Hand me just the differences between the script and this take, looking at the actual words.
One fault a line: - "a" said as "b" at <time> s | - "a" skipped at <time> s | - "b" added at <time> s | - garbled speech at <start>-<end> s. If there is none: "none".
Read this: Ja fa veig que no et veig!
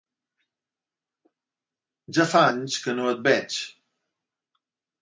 - "veig" said as "anys" at 2.5 s